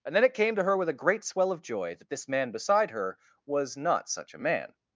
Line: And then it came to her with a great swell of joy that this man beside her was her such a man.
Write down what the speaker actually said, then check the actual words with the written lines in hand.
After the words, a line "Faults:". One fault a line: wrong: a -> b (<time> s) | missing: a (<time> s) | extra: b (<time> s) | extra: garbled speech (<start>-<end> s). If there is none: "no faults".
And then it came to her with a great swell of joy that this man beside her was not such a man.
Faults:
wrong: her -> not (3.8 s)